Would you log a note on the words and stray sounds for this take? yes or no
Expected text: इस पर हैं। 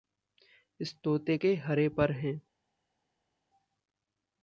yes